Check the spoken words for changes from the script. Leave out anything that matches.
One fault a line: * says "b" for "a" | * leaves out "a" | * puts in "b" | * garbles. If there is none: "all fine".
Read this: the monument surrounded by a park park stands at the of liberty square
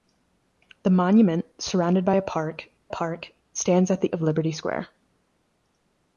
all fine